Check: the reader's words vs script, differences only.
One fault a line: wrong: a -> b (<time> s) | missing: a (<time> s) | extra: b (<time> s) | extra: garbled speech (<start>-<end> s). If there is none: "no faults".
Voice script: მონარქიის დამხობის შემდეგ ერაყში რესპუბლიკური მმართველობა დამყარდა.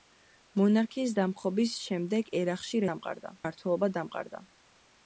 wrong: რესპუბლიკური -> დამყარდა (2.9 s)